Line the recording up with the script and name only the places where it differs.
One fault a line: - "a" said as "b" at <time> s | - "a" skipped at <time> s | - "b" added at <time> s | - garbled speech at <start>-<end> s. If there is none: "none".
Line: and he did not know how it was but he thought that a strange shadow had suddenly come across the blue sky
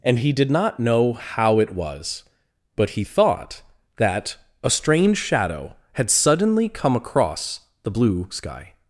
none